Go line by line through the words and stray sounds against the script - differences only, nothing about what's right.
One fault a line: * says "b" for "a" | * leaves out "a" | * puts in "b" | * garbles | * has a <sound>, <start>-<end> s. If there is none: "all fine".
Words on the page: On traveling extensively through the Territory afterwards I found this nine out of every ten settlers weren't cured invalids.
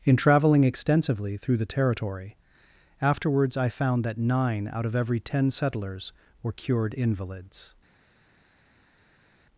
* says "In" for "On"
* says "that" for "this"
* says "were" for "weren't"